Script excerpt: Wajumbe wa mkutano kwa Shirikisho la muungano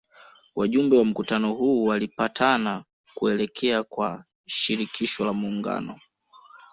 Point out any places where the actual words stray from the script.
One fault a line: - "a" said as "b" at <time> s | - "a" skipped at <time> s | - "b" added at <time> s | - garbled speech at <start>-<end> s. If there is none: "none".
- "huu walipatana kuelekea" added at 1.5 s